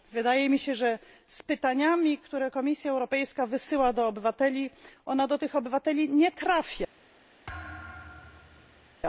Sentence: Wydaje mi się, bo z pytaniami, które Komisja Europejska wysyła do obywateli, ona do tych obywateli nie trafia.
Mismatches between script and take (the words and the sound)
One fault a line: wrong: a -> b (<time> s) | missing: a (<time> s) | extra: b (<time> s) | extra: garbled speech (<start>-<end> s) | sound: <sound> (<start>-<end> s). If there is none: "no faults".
wrong: bo -> że (0.8 s)
sound: thud (7.5-9.0 s)